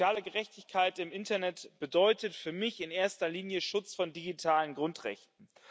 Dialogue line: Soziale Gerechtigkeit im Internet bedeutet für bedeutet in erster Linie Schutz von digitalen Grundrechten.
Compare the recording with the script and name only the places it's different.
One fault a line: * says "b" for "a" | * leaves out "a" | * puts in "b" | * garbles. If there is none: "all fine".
* says "mich" for "bedeutet"